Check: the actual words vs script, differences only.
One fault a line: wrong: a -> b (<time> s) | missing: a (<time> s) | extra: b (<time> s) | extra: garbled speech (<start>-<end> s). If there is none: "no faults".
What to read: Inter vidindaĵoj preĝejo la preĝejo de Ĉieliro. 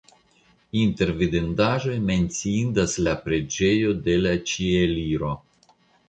wrong: preĝejo -> menciindas (2.1 s)
extra: la (4.2 s)